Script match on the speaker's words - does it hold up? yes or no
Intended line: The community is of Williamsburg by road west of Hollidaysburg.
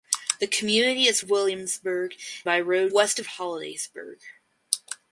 yes